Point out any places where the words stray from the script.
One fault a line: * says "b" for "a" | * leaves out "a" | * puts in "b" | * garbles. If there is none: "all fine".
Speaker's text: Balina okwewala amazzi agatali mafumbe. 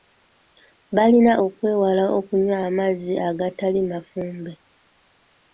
* puts in "okunywa"